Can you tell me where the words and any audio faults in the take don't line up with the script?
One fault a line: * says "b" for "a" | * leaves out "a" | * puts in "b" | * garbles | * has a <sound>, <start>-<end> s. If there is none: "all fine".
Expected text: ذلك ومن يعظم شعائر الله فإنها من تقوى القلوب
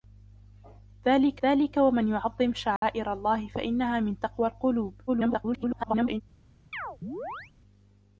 * puts in "ذلك"
* has a dropout, 2.8-2.8 s
* garbles
* has a chirp, 6.7-7.5 s